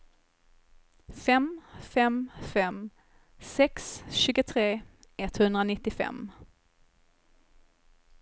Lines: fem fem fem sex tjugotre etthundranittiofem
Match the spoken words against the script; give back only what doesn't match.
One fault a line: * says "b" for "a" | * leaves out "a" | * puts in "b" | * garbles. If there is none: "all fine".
all fine